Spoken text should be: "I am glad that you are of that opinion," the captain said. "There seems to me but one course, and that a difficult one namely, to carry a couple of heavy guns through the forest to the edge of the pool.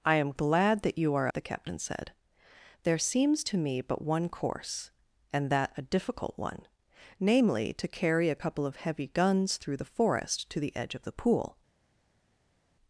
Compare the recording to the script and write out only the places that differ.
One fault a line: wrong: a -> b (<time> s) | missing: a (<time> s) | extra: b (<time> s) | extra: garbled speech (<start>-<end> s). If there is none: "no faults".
missing: of that opinion (1.3 s)